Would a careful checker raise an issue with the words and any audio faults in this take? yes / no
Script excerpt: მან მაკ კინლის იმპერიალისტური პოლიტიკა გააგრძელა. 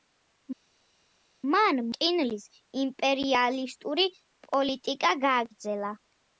yes